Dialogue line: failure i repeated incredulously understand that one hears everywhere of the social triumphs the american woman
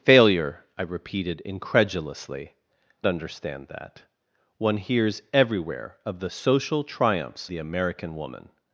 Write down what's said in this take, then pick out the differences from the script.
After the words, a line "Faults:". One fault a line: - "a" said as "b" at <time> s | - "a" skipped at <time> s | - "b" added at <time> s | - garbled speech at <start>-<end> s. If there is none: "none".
failure i repeated incredulously understand that one hears everywhere of the social triumphs the american woman
Faults:
none